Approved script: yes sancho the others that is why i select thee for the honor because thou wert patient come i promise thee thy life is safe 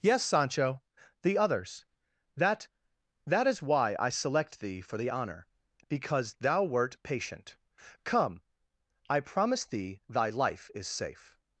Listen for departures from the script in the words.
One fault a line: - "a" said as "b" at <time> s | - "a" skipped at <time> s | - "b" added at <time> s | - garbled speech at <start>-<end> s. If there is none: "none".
- "that" added at 3.3 s